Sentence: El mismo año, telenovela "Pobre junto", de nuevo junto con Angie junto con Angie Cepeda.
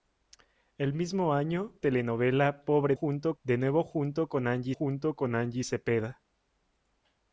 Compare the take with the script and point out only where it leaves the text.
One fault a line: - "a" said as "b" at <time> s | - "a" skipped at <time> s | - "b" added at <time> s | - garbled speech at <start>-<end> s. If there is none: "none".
none